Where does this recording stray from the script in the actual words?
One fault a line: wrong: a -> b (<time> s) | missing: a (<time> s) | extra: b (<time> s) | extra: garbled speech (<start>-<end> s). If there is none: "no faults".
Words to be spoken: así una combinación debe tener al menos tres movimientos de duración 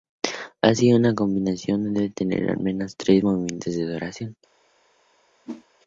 no faults